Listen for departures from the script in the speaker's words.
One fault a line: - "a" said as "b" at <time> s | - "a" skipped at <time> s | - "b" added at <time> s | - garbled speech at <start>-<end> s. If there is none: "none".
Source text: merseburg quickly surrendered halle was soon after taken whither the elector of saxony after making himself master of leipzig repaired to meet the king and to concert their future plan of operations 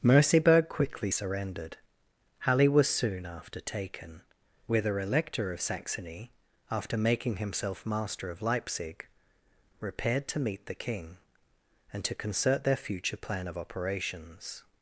- "the" skipped at 5.0 s